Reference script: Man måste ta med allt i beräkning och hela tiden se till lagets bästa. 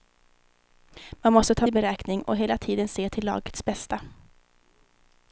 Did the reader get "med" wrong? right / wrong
wrong